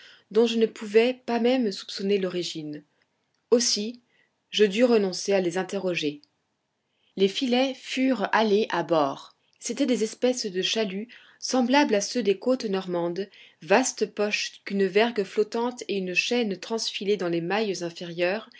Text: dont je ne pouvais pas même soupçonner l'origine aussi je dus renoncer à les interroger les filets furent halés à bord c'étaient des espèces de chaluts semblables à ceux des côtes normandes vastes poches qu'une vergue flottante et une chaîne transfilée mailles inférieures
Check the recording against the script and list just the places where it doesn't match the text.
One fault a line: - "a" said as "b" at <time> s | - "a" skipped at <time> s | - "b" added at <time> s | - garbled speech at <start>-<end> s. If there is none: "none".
- "dans les" added at 17.2 s